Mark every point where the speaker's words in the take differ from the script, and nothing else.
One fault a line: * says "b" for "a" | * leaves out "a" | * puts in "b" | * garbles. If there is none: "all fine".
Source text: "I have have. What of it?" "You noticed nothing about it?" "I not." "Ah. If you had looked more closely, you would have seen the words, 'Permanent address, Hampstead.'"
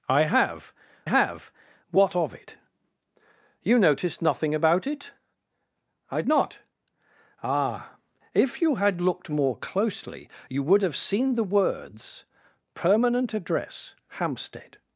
all fine